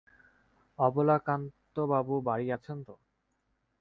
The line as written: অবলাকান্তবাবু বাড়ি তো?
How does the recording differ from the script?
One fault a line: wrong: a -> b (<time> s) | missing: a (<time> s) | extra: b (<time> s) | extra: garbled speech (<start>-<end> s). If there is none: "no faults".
extra: আছেন (2.6 s)